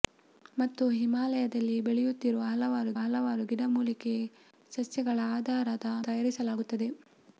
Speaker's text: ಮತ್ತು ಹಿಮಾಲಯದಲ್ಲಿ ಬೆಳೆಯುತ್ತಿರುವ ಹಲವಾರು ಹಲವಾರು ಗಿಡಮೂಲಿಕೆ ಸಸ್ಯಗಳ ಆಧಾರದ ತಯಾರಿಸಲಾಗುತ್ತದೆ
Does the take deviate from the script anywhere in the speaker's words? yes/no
no